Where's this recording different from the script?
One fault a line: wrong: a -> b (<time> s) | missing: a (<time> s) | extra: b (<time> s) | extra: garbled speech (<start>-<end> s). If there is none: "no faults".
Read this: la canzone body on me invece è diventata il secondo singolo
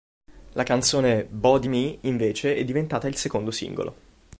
missing: on (1.7 s)